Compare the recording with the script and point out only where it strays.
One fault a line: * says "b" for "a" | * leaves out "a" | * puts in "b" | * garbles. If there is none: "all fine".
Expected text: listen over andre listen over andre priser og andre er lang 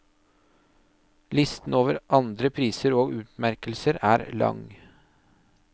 * leaves out "listen over andre"
* says "utmerkelser" for "andre"